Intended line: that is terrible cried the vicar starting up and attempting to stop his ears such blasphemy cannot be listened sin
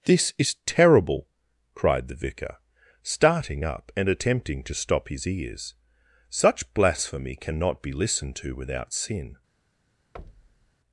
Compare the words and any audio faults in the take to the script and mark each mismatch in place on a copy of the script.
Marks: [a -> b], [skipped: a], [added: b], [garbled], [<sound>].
[that -> this] is terrible cried the vicar starting up and attempting to stop his ears such blasphemy cannot be listened [added: to without] sin [thud]